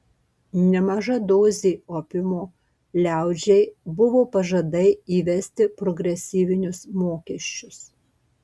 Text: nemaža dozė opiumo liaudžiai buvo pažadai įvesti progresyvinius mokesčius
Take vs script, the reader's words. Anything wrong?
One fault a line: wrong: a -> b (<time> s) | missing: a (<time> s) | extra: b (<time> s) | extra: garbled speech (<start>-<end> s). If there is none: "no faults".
no faults